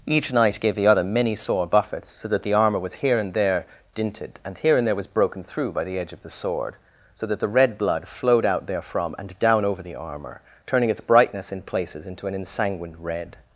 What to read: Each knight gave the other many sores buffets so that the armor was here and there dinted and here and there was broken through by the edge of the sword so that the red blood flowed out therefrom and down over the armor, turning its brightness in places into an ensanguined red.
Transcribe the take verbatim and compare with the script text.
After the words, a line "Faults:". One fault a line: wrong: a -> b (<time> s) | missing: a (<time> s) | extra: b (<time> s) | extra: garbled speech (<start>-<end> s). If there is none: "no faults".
Each knight gave the other many sore buffets so that the armor was here and there dinted and here and there was broken through by the edge of the sword so that the red blood flowed out therefrom and down over the armor, turning its brightness in places into an ensanguined red.
Faults:
wrong: sores -> sore (1.4 s)